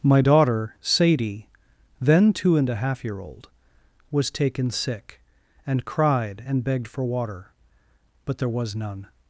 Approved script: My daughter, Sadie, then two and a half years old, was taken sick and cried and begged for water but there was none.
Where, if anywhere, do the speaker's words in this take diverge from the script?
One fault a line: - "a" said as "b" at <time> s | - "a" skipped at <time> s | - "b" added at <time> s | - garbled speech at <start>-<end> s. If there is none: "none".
- "years" said as "year" at 3.0 s